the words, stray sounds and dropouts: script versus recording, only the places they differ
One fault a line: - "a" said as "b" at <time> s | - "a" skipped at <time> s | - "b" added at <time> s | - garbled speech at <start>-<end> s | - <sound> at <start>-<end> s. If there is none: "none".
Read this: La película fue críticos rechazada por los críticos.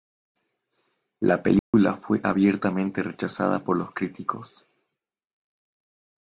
- dropout at 1.6-1.7 s
- "críticos" said as "abiertamente" at 2.2 s